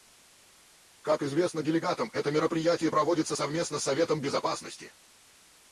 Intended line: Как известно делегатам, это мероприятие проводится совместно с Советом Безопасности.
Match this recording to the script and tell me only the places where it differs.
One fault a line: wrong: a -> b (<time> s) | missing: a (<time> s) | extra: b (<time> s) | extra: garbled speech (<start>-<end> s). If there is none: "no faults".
no faults